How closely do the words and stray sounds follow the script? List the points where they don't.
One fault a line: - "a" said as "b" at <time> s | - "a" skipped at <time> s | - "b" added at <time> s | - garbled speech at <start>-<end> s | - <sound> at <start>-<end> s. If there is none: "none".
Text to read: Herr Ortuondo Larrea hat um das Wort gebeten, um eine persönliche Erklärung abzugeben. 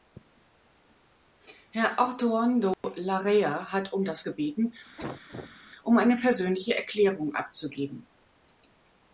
- dropout at 2.7-2.8 s
- "Wort" skipped at 4.2 s
- cough at 5.0-5.6 s